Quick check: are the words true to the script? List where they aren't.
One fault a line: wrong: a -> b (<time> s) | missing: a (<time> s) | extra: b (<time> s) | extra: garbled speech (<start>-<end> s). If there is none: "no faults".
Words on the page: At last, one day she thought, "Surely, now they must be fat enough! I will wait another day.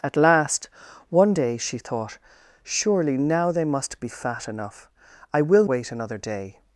no faults